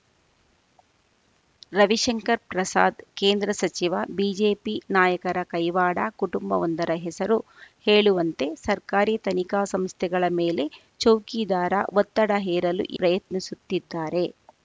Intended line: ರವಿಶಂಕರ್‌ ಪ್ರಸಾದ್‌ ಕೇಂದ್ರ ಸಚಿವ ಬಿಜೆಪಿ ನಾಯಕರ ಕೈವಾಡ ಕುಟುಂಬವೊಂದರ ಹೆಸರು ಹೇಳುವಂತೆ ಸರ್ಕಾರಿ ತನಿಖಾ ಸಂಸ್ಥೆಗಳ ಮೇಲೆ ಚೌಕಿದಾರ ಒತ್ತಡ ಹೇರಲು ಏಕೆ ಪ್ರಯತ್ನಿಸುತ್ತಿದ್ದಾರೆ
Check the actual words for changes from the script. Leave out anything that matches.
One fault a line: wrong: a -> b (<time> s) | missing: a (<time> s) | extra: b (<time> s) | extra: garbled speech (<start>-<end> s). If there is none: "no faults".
missing: ಏಕೆ (12.8 s)